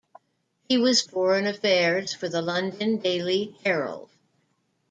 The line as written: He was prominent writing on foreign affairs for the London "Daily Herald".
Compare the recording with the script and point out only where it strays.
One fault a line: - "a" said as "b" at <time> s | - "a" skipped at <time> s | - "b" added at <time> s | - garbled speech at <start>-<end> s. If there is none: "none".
- "prominent writing on" skipped at 1.0 s